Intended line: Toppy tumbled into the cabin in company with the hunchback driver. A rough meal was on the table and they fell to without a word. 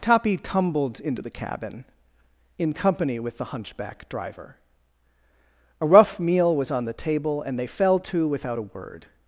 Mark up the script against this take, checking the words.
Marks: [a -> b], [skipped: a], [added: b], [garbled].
Toppy tumbled into the cabin in company with the hunchback driver. A rough meal was on the table and they fell to without a word.